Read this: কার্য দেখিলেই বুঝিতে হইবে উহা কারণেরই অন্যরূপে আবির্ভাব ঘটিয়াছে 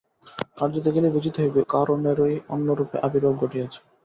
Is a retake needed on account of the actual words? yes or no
yes